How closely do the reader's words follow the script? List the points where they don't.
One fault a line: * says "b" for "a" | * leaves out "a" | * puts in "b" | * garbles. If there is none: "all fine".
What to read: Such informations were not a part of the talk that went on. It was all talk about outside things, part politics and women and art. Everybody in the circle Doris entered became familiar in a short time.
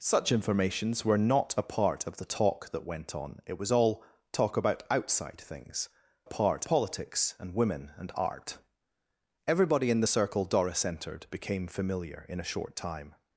all fine